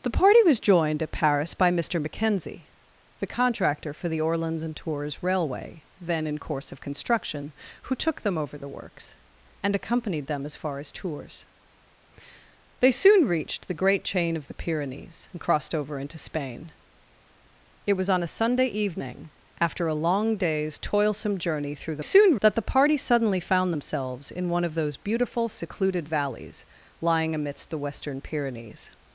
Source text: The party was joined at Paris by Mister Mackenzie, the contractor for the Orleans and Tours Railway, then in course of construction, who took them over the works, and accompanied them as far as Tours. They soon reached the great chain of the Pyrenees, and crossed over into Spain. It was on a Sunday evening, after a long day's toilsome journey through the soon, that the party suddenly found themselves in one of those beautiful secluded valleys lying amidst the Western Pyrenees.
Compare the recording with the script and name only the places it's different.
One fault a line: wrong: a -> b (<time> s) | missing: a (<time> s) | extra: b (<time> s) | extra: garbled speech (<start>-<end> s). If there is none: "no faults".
no faults